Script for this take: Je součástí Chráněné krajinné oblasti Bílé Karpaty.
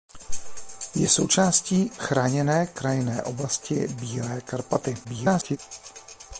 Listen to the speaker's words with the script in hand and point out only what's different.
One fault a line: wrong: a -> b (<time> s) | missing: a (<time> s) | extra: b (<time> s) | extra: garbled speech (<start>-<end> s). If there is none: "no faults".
extra: garbled speech (5.0-5.6 s)